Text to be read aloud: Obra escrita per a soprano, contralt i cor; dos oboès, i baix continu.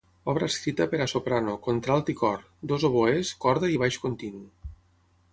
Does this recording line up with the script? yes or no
no